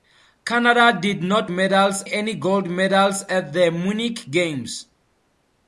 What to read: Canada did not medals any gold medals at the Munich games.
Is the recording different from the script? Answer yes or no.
no